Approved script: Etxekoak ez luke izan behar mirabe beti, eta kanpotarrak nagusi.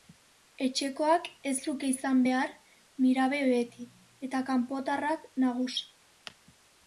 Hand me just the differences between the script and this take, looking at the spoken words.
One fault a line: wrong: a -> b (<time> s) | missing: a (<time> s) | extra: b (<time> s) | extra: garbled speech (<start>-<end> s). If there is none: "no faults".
no faults